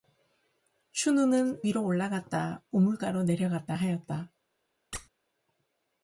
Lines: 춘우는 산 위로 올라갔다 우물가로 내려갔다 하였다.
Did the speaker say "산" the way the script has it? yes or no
no